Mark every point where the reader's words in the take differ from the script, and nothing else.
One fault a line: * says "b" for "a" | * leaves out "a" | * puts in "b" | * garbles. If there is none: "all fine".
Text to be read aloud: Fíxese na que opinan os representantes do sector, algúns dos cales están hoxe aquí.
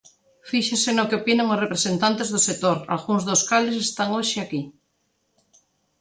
* says "no" for "na"